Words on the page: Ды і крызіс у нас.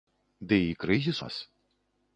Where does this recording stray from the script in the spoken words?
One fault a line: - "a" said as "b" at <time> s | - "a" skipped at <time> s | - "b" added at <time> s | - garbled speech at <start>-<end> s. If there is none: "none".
- "у" skipped at 1.2 s